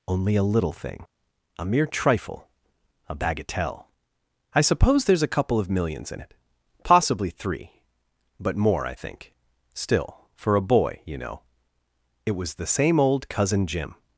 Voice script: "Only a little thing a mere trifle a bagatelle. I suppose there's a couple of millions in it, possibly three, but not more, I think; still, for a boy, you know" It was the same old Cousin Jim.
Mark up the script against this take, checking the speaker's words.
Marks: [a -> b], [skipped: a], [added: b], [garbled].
"Only a little thing a mere trifle a bagatelle. I suppose there's a couple of millions in it, possibly three, but [skipped: not] more, I think; still, for a boy, you know" It was the same old Cousin Jim.